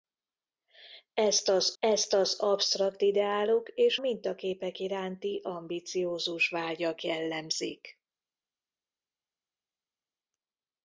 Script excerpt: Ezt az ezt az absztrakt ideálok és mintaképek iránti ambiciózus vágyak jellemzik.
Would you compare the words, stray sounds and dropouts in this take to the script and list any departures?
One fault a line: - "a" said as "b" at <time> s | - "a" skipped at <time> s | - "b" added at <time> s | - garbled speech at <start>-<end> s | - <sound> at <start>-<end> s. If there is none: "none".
none